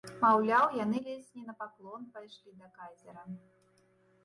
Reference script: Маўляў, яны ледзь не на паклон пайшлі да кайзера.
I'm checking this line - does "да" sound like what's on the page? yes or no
yes